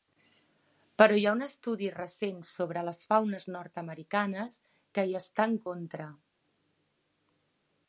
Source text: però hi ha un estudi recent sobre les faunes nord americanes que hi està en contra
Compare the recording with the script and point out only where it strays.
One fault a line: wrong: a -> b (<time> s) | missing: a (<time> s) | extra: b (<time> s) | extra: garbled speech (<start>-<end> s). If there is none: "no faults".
no faults